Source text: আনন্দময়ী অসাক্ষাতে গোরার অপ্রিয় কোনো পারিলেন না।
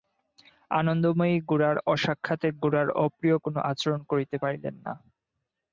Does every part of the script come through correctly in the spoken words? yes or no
no